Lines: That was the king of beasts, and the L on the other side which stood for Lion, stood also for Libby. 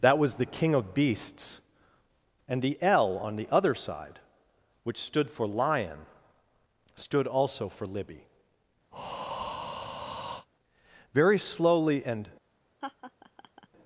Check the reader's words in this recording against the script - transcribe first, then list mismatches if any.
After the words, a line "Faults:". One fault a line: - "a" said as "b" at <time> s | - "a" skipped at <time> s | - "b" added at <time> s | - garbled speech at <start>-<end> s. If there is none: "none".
That was the king of beasts, and the L on the other side which stood for Lion, stood also for Libby. Very slowly and
Faults:
- "Very slowly and" added at 11.1 s